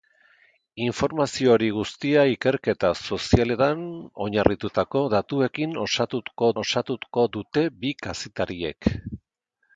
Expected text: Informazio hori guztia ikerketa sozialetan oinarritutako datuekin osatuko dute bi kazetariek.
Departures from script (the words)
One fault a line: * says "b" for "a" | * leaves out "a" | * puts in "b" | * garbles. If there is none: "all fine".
* puts in "osatuko"